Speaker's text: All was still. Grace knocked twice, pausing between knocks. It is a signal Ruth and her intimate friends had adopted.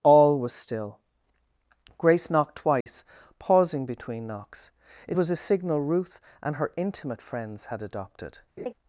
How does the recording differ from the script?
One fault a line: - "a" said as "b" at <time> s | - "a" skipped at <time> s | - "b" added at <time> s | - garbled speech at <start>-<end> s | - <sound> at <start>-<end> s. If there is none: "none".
- dropout at 2.8-2.9 s
- "is" said as "was" at 5.1 s
- laugh at 8.6-8.7 s